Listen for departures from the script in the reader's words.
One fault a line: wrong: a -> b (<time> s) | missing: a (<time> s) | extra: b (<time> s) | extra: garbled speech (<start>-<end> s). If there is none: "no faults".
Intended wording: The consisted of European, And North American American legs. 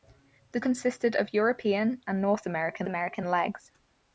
no faults